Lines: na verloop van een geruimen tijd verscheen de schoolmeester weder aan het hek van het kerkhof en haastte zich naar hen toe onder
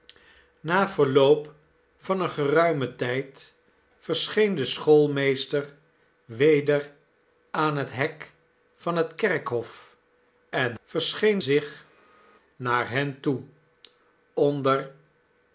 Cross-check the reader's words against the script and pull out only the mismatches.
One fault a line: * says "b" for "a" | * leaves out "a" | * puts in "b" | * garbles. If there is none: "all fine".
* says "verscheen" for "haastte"